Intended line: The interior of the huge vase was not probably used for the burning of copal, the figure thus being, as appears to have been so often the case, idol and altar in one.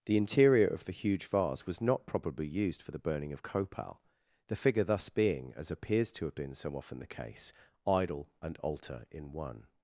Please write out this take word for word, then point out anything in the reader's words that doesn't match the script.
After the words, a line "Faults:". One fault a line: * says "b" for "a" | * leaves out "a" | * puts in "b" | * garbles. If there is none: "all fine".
The interior of the huge vase was not probably used for the burning of copal, the figure thus being, as appears to have been so often the case, idol and altar in one.
Faults:
all fine